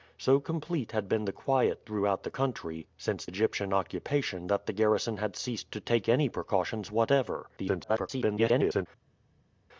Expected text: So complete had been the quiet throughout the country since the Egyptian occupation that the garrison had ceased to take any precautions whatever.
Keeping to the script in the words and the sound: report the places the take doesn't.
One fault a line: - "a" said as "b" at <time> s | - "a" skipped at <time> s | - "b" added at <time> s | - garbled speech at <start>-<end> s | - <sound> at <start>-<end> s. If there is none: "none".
- "the" skipped at 3.3 s
- garbled speech at 7.6-8.9 s